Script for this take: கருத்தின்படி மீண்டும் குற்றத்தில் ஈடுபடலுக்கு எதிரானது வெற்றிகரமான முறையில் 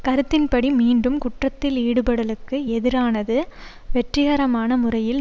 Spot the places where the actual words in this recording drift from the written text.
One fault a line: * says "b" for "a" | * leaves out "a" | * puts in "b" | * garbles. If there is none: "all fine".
all fine